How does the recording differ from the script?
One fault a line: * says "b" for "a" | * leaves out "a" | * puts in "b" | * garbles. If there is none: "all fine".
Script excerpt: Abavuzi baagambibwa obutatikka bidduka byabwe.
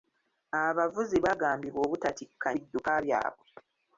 all fine